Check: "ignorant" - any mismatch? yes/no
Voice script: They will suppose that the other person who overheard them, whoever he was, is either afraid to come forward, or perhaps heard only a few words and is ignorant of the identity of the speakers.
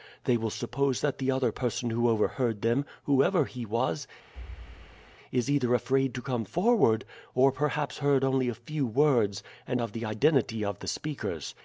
yes